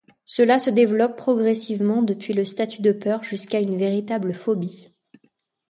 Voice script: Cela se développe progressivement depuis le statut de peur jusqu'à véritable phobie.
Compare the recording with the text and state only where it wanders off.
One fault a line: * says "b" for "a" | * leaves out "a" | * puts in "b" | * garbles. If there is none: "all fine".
* puts in "une"